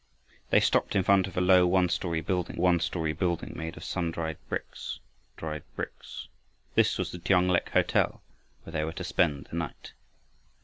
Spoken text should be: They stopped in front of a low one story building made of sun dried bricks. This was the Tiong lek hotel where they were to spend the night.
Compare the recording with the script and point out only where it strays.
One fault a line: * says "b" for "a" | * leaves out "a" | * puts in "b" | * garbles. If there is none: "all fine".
* puts in "one story building"
* puts in "dried bricks"